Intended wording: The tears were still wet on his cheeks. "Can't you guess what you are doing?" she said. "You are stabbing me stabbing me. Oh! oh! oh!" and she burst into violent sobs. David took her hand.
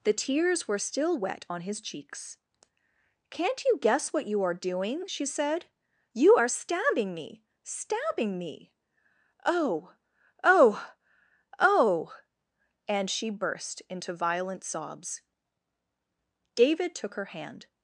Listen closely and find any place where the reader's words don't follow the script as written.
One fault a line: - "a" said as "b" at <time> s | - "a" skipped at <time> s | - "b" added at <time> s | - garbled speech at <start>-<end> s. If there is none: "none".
none